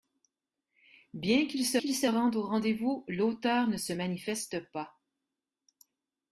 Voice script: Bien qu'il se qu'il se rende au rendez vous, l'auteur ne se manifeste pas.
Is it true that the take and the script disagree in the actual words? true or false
false